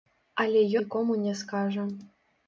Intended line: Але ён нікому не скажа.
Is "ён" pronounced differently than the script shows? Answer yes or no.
yes